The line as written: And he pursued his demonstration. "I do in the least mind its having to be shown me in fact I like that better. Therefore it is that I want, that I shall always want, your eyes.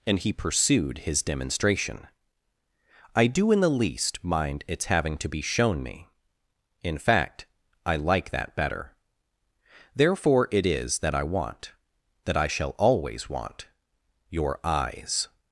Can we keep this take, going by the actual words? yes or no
yes